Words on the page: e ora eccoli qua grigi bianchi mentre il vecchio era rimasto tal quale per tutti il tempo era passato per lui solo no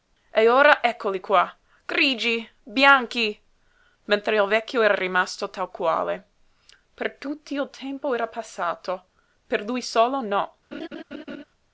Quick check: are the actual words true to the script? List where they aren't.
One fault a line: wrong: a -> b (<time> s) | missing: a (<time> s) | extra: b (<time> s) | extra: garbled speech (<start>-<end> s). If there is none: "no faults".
no faults